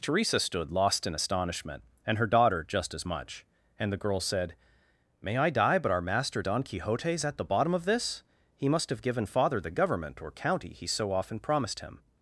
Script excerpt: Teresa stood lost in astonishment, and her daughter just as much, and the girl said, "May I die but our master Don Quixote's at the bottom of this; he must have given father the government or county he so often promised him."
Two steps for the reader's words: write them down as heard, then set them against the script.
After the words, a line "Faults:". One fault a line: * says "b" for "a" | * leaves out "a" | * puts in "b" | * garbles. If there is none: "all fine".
Teresa stood lost in astonishment, and her daughter just as much, and the girl said, "May I die but our master Don Quixote's at the bottom of this; he must have given father the government or county he so often promised him."
Faults:
all fine